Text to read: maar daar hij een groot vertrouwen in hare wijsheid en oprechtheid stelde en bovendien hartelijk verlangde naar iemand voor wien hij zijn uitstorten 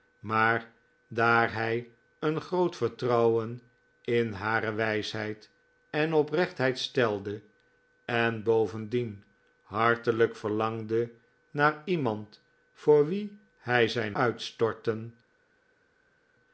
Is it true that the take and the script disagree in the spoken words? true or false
false